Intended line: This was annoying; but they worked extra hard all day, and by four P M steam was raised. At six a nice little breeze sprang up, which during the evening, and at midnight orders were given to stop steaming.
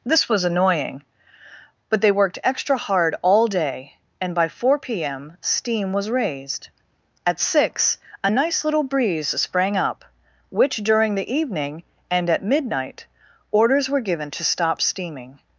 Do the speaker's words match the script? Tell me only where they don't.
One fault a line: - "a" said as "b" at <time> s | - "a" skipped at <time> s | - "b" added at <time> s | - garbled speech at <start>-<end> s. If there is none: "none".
none